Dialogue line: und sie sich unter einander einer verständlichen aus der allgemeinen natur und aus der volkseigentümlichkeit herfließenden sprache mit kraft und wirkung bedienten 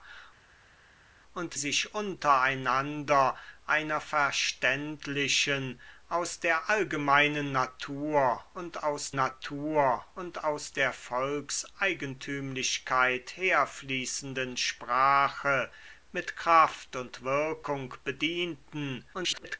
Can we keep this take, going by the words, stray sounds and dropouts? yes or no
no